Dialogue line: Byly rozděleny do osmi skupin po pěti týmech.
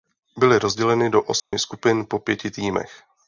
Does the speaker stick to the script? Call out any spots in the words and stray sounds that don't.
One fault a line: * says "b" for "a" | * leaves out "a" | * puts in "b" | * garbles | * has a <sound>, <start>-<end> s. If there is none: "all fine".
* has a dropout, 1.4-1.5 s